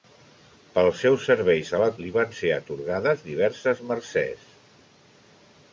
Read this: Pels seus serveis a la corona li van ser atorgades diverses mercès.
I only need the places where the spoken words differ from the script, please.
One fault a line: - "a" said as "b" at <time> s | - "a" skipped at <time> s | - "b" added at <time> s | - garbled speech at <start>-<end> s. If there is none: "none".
- "corona" skipped at 1.9 s